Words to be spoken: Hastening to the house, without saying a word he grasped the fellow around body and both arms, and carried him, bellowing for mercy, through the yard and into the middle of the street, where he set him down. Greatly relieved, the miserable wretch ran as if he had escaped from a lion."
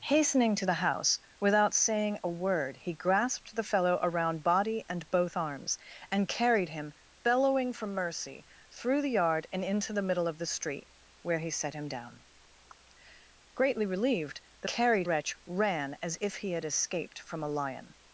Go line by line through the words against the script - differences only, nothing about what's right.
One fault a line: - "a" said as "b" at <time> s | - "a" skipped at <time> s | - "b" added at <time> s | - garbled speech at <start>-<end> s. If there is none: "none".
- "miserable" said as "carried" at 14.6 s